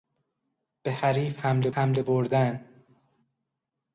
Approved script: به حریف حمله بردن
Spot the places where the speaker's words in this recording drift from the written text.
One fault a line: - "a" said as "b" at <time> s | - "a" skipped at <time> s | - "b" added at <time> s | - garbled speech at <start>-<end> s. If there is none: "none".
- "حمله" added at 1.7 s